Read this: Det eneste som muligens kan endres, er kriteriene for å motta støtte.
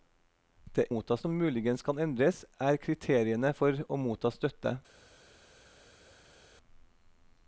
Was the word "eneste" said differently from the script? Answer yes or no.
yes